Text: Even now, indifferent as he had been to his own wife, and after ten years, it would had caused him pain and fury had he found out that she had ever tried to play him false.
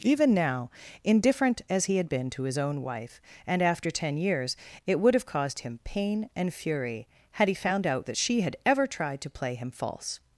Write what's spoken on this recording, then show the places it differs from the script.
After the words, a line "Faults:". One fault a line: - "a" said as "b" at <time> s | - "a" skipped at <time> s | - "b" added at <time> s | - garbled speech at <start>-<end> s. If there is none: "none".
Even now, indifferent as he had been to his own wife, and after ten years, it would have caused him pain and fury had he found out that she had ever tried to play him false.
Faults:
- "had" said as "have" at 5.1 s